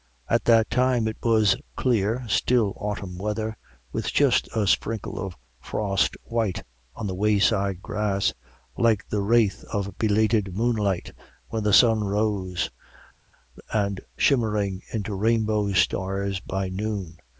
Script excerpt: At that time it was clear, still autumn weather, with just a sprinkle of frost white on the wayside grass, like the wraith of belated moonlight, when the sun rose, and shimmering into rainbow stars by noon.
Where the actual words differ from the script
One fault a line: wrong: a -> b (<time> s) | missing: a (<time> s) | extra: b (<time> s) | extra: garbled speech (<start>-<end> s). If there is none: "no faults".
no faults